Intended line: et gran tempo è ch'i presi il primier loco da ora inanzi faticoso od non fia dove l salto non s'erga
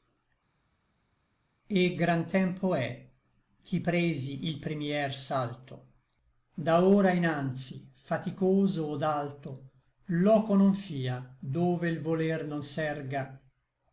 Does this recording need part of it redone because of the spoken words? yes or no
yes